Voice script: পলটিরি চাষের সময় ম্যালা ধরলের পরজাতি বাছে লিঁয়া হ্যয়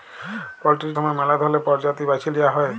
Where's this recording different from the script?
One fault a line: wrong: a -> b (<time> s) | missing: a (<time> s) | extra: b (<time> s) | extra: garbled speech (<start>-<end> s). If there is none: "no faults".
missing: চাষের (0.9 s)